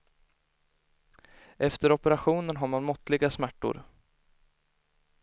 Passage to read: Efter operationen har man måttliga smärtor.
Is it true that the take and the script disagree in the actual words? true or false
false